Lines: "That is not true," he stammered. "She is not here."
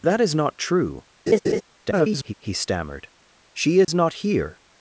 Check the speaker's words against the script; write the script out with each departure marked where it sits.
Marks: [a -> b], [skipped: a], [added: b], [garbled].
"That is not true," [garbled] he stammered. "She is not here."